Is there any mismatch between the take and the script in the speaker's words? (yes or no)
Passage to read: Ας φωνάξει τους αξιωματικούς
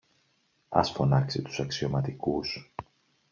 no